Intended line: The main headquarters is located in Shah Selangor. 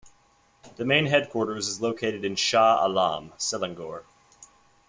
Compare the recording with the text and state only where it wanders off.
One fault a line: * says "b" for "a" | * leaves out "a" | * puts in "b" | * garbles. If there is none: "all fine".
* puts in "Alam"